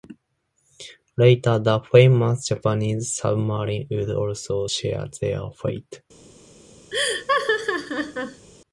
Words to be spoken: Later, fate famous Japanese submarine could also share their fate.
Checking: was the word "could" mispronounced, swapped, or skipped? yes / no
yes